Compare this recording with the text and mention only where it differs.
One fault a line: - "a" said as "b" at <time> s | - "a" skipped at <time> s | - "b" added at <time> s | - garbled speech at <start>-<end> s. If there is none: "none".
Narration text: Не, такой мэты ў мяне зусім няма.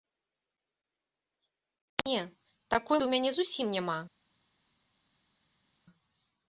- "мэты" skipped at 3.0 s